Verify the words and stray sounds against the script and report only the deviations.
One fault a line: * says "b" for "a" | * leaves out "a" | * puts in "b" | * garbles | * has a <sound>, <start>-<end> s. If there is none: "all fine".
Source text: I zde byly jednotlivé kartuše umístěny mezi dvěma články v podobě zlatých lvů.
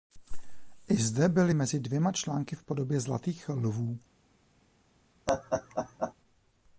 * leaves out "jednotlivé kartuše umístěny"
* has a laugh, 5.3-6.1 s